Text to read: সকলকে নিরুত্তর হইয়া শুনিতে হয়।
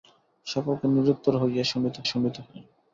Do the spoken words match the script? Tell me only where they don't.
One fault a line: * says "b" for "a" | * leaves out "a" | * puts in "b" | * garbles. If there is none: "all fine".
* puts in "শুনিতে"